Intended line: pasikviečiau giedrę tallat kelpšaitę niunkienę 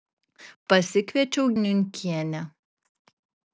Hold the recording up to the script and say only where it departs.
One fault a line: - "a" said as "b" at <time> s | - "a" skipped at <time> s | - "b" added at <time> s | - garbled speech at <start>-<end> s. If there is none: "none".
- "giedrę tallat kelpšaitę" skipped at 1.5 s